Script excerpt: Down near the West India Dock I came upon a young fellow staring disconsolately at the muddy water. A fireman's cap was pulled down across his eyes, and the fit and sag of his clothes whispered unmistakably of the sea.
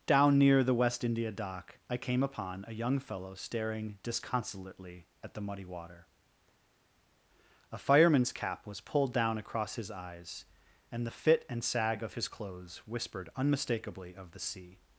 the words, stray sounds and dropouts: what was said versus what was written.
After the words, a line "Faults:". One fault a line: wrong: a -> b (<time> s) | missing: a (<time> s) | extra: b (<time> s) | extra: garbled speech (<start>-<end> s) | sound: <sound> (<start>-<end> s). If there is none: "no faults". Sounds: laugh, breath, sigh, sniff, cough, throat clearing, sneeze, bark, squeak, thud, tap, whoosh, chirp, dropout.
Down near the West India Dock I came upon a young fellow staring disconsolately at the muddy water. A fireman's cap was pulled down across his eyes, and the fit and sag of his clothes whispered unmistakably of the sea.
Faults:
no faults